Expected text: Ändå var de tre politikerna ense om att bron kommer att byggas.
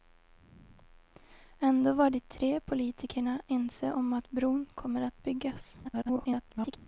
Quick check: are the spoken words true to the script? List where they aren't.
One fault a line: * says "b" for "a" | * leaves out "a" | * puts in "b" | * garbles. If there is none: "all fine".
* garbles